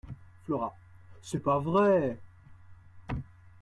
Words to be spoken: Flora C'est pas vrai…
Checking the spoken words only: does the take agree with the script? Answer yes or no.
yes